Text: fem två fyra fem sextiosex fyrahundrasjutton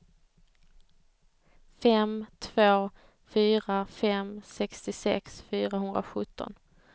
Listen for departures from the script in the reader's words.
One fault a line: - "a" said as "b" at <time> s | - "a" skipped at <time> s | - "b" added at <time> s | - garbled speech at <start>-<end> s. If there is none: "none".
none